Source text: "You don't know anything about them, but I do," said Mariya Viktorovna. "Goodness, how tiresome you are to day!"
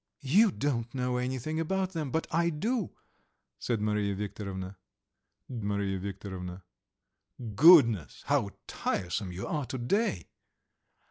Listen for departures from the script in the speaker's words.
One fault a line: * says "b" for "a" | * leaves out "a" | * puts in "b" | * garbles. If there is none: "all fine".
* puts in "Mariya Viktorovna"